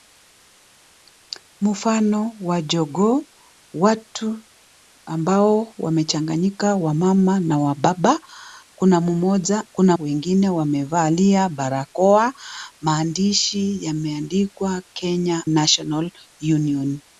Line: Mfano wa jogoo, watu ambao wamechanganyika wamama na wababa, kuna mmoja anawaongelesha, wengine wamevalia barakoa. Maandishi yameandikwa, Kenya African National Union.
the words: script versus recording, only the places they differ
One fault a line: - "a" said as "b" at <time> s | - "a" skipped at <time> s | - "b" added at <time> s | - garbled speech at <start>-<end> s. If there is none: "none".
- "anawaongelesha" said as "kuna" at 9.7 s
- "African" skipped at 15.4 s